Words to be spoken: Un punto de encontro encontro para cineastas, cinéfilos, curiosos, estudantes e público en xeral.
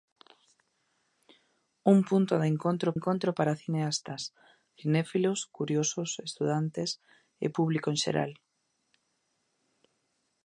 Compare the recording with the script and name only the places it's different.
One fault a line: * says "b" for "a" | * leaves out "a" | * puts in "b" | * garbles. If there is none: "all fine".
all fine